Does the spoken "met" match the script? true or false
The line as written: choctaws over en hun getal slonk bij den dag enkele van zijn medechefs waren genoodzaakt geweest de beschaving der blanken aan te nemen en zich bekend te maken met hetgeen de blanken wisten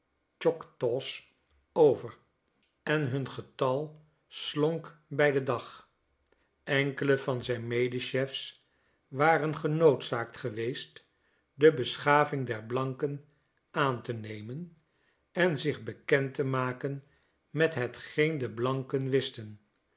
true